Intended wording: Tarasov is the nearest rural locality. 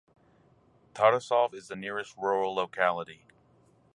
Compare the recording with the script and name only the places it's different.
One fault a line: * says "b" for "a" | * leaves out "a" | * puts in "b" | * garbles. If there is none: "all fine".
all fine